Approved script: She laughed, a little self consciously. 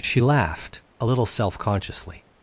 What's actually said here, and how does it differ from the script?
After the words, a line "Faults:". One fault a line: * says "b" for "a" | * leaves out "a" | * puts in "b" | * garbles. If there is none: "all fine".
She laughed, a little self consciously.
Faults:
all fine